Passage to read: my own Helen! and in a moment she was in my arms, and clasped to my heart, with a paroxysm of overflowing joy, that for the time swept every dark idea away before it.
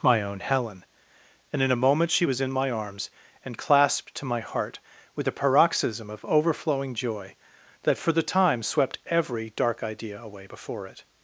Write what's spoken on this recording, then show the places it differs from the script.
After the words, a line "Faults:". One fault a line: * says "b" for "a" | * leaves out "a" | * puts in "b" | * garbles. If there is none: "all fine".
my own Helen! and in a moment she was in my arms, and clasped to my heart, with a paroxysm of overflowing joy, that for the time swept every dark idea away before it.
Faults:
all fine